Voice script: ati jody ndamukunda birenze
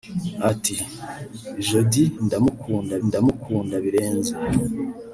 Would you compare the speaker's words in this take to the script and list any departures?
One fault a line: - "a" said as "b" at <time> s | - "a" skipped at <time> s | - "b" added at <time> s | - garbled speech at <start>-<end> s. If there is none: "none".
- "ndamukunda" added at 3.1 s